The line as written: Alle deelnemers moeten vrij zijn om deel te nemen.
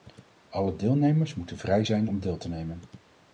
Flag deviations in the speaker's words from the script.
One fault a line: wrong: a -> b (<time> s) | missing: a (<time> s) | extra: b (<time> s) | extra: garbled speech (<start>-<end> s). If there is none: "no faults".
no faults